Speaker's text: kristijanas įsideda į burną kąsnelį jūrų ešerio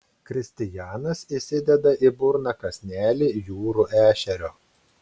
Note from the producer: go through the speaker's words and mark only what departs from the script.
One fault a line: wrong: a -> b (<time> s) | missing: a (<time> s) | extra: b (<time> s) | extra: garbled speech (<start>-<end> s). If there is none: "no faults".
no faults